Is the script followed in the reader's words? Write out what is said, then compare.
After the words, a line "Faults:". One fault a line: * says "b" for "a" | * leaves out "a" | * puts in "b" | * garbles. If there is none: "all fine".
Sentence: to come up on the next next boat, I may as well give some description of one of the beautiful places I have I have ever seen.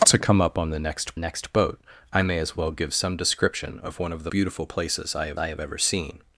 to come up on the next next boat, I may as well give some description of one of the beautiful places I have I have ever seen.
Faults:
all fine